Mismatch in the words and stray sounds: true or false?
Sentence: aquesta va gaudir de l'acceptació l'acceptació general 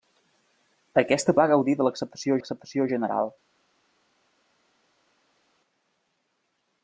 false